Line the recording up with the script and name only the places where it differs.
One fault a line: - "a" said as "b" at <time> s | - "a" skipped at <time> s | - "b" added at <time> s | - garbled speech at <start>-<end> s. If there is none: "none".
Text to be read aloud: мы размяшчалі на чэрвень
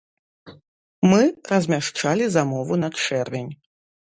- "замову" added at 2.4 s